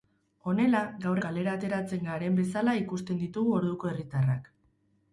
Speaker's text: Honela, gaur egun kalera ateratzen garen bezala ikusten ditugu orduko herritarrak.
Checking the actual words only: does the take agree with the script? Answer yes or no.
no